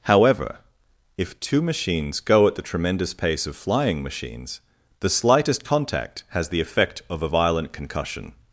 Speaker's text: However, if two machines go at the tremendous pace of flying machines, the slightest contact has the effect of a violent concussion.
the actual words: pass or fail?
pass